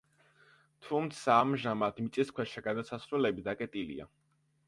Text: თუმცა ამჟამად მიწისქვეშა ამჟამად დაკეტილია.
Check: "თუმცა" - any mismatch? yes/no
no